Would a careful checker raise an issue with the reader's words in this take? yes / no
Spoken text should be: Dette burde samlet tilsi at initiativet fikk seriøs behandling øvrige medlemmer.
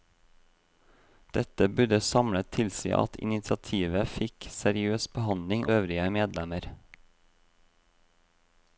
no